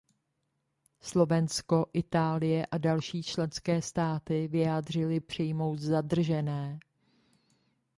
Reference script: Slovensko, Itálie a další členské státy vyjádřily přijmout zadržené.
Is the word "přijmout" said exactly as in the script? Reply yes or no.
yes